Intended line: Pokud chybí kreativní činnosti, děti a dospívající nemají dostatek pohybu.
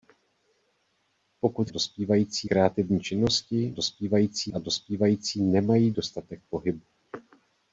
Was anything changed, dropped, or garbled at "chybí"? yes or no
yes